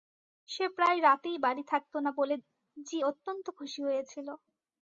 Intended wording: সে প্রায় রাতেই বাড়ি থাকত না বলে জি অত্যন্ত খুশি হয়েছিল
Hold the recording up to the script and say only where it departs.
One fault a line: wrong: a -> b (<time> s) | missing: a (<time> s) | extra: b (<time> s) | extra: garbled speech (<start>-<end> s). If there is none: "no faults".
no faults